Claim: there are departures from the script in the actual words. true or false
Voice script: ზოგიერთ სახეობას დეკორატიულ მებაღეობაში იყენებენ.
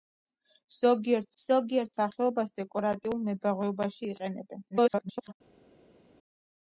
true